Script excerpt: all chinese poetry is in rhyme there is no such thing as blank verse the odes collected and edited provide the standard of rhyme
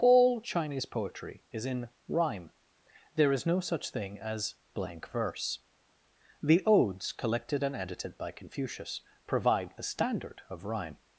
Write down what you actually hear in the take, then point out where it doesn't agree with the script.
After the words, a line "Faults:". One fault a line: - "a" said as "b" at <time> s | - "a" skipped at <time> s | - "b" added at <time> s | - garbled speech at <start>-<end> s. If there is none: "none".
all chinese poetry is in rhyme there is no such thing as blank verse the odes collected and edited by confucius provide the standard of rhyme
Faults:
- "by confucius" added at 8.2 s